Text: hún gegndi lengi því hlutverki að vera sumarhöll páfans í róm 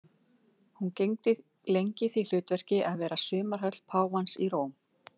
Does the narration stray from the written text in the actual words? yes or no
no